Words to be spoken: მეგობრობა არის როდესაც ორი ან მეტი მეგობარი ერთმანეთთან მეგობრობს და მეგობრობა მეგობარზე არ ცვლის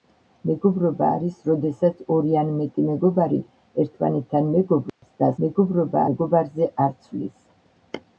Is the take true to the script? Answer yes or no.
yes